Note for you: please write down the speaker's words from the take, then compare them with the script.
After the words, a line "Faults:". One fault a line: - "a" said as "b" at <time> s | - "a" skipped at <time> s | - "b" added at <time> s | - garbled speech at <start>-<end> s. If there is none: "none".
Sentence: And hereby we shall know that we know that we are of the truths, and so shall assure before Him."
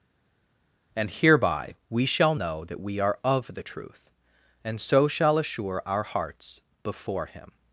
And hereby we shall know that we are of the truth, and so shall assure our hearts before Him."
Faults:
- "know that we" skipped at 3.0 s
- "truths" said as "truth" at 3.6 s
- "our hearts" added at 5.8 s